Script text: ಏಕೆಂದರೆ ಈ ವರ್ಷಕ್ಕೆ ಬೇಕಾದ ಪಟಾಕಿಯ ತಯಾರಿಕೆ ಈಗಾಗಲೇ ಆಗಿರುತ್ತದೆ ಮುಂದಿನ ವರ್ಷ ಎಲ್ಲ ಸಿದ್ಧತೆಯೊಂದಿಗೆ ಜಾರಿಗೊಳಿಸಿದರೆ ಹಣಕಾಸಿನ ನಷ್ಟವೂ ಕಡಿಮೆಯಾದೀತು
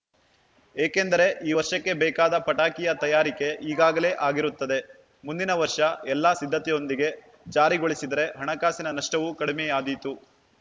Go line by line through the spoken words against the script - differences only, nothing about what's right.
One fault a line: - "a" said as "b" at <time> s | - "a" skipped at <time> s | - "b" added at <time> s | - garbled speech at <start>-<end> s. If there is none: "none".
none